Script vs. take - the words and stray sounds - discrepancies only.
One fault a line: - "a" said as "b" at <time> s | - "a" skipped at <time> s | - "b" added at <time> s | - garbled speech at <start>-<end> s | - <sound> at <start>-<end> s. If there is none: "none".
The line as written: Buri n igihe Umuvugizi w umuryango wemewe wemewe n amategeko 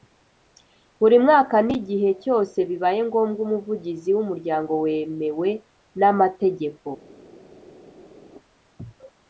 - "mwaka" added at 1.2 s
- "cyose bibaye ngombwa" added at 2.2 s
- "wemewe" skipped at 5.5 s